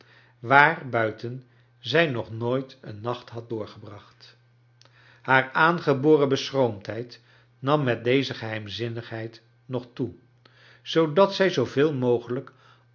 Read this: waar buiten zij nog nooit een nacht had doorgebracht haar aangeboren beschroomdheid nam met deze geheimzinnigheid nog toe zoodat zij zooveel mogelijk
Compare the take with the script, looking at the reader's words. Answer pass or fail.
pass